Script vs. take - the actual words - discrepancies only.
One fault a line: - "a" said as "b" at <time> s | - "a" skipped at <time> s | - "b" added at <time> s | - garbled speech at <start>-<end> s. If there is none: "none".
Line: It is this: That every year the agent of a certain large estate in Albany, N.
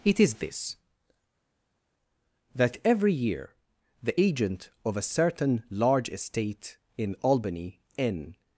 none